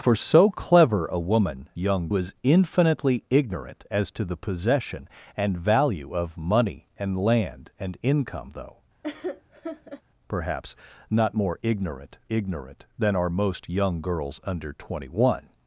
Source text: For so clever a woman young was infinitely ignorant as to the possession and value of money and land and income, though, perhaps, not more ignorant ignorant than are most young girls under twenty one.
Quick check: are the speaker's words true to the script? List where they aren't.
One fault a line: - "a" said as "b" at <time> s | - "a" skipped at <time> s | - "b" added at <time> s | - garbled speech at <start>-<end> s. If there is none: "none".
none